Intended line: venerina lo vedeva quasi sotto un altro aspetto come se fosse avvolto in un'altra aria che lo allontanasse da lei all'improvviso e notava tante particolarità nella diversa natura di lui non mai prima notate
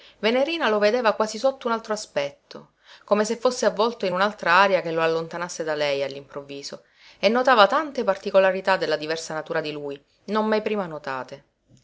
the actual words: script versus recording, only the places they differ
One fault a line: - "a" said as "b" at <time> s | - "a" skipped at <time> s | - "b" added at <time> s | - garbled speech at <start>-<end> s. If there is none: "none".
- "nella" said as "della" at 8.8 s